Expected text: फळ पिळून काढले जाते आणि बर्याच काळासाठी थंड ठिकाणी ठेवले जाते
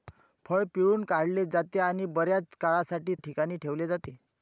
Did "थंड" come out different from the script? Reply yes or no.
yes